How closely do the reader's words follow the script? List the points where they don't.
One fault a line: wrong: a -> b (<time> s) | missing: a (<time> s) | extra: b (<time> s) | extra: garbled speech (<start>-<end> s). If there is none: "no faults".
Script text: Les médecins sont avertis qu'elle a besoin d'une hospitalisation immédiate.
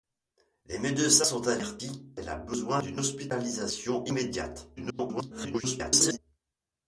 extra: garbled speech (4.8-6.2 s)